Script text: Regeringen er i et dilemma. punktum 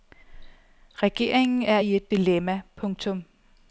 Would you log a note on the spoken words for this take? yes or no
no